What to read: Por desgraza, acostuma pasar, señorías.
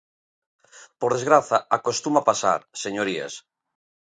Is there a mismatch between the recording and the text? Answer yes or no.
no